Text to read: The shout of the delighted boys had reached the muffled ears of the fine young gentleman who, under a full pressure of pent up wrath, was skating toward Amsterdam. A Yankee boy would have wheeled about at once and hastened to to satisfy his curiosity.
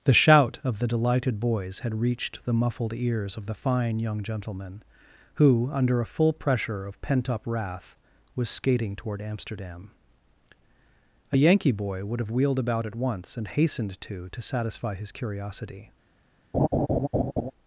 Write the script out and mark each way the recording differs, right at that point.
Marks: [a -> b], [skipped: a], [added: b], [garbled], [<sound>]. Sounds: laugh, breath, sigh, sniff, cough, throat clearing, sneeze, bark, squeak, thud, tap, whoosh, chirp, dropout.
The shout of the delighted boys had reached the muffled ears of the fine young gentleman who, under a full pressure of pent up wrath, was skating toward Amsterdam. A Yankee boy would have wheeled about at once and hastened to to satisfy his curiosity. [laugh]